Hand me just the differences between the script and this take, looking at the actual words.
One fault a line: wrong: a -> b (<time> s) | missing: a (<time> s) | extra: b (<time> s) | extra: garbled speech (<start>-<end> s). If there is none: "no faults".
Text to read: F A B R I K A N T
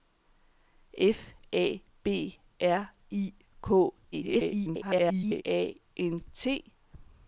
extra: garbled speech (4.1-5.4 s)